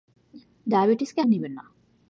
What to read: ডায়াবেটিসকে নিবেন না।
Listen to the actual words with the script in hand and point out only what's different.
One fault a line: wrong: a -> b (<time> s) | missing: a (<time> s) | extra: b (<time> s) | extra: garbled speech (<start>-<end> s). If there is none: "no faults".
no faults